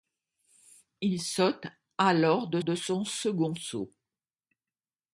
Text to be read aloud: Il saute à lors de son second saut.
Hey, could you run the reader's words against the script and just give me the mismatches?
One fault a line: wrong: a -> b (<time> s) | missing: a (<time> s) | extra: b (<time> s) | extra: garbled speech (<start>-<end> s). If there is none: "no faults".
extra: de (2.6 s)